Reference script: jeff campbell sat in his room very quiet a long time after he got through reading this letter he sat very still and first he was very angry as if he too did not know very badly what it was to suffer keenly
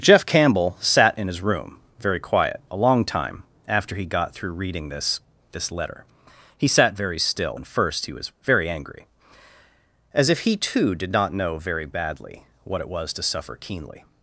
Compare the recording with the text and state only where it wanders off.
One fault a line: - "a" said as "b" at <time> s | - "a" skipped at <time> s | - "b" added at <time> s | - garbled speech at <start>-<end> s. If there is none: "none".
- "this" added at 5.5 s